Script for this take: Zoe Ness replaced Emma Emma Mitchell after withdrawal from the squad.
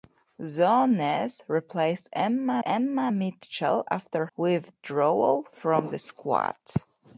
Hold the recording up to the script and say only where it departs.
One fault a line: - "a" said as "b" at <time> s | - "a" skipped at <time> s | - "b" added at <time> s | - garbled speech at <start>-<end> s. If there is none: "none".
none